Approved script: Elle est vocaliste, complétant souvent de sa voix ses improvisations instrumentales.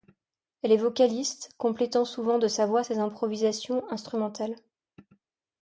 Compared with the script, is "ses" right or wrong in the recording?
right